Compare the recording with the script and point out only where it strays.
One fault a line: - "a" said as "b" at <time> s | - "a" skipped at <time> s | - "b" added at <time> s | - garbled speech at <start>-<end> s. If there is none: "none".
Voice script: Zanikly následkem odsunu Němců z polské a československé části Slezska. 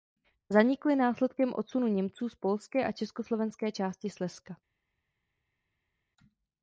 none